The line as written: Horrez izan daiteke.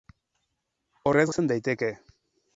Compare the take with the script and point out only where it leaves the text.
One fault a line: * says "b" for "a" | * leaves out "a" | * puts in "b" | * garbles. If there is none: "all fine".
all fine